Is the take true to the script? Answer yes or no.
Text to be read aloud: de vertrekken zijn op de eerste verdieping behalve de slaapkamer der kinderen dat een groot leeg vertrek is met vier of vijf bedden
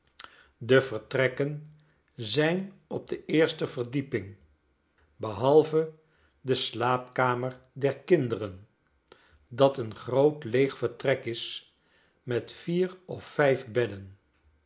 yes